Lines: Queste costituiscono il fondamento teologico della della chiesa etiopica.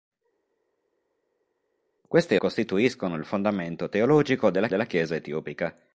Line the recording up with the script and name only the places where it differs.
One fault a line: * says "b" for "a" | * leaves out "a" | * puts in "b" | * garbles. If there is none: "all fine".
all fine